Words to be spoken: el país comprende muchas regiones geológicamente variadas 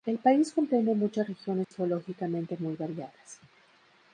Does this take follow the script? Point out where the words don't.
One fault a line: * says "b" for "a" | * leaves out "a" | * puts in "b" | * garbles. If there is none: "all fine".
* puts in "muy"